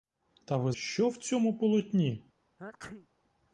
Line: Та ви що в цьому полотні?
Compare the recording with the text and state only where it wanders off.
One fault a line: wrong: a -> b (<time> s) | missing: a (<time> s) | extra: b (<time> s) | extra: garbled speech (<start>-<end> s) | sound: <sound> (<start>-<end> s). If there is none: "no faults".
sound: sneeze (2.6-3.1 s)